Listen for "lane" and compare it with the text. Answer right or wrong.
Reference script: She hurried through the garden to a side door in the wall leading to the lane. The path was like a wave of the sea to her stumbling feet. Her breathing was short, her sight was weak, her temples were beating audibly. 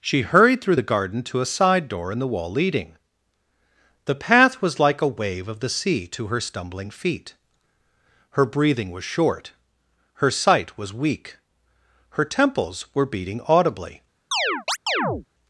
wrong